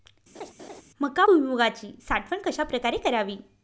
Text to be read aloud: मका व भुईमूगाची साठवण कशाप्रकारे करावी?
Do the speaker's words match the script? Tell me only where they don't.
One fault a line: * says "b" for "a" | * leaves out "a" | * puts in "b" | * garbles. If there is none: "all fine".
* leaves out "व"